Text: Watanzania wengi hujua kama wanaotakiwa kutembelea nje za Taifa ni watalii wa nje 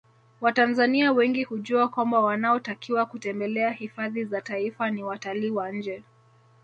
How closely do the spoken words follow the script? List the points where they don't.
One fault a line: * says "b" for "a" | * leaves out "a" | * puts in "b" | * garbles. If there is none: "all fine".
* says "kwamba" for "kama"
* says "hifadhi" for "nje"